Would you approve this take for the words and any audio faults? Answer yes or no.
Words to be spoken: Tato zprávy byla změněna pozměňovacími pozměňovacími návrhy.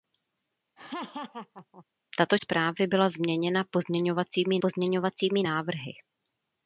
no